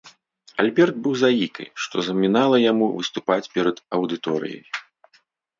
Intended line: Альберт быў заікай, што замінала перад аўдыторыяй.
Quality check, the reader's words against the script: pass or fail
fail